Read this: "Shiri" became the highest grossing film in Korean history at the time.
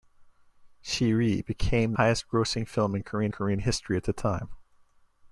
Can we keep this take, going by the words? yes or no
no